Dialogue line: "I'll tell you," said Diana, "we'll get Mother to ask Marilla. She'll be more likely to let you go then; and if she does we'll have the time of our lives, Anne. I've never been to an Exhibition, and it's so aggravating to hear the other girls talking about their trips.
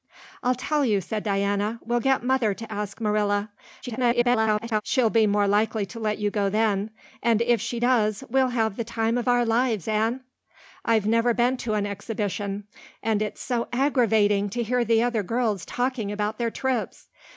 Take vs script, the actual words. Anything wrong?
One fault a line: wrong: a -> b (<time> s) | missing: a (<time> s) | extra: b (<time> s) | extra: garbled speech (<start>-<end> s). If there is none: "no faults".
extra: garbled speech (3.8-4.8 s)